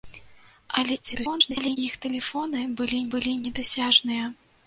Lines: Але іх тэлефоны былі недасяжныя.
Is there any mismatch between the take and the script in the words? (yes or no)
yes